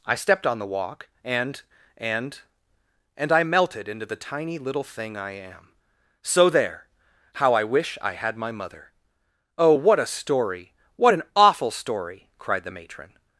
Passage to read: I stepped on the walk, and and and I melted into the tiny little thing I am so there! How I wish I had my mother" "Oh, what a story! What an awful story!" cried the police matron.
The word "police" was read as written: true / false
false